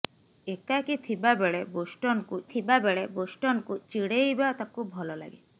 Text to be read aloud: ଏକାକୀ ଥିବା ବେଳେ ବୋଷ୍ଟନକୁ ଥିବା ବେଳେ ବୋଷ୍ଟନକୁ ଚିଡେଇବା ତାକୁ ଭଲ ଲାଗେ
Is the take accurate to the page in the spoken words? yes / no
yes